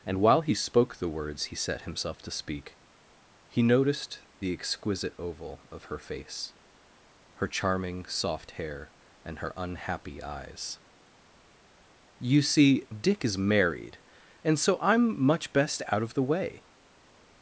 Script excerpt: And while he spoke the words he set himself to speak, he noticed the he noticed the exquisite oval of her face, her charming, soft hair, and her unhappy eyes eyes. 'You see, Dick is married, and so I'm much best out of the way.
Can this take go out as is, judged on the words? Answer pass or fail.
fail